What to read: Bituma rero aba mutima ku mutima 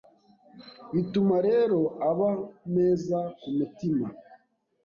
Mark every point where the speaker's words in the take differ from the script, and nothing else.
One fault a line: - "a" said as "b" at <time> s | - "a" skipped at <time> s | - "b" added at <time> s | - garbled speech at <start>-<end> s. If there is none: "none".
- "mutima" said as "meza" at 2.7 s